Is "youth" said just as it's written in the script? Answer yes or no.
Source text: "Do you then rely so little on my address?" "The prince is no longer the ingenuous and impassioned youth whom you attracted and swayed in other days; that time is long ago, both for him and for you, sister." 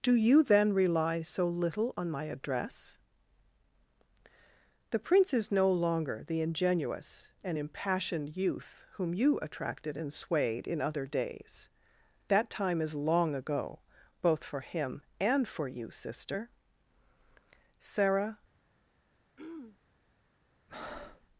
yes